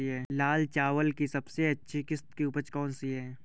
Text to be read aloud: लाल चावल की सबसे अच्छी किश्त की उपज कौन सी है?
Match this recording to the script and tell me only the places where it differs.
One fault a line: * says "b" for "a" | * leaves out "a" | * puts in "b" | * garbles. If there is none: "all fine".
all fine